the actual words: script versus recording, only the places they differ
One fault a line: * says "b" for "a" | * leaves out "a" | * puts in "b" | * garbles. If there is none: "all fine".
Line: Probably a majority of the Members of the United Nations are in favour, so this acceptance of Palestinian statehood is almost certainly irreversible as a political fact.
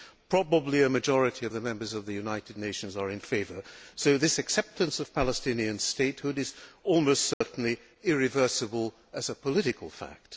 all fine